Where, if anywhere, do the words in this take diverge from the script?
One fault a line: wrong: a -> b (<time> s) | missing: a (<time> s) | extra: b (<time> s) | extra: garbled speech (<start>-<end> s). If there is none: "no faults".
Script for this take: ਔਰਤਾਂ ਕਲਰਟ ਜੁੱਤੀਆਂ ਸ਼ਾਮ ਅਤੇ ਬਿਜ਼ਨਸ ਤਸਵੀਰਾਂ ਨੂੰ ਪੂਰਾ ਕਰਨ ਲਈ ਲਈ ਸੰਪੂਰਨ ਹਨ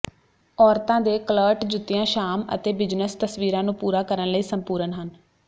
extra: ਦੇ (1.0 s)
missing: ਲਈ (4.4 s)